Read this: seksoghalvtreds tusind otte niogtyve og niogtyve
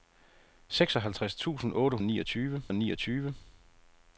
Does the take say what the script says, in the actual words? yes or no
yes